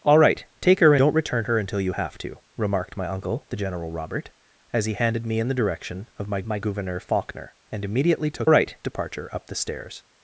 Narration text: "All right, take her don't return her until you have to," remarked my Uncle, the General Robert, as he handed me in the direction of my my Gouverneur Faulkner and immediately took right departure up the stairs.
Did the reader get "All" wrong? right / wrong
right